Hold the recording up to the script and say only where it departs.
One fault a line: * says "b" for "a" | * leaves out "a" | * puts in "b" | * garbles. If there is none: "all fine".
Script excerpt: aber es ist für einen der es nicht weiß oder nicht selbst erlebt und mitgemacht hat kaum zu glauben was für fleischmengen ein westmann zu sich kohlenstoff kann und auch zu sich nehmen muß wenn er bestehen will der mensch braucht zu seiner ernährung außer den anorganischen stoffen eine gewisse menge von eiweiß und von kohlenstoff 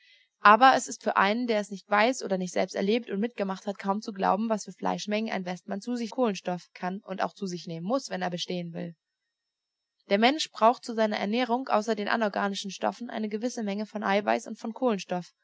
all fine